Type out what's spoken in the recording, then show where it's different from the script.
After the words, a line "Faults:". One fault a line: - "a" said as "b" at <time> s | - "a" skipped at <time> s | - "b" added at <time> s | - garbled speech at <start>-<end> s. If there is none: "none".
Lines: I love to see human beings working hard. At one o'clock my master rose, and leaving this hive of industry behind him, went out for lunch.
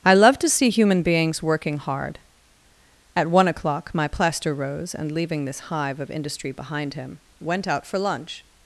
I love to see human beings working hard. At one o'clock my plaster rose, and leaving this hive of industry behind him, went out for lunch.
Faults:
- "master" said as "plaster" at 4.1 s